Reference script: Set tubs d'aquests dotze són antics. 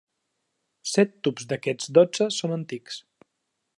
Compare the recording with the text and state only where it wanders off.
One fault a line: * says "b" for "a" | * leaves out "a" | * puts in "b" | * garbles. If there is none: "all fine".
all fine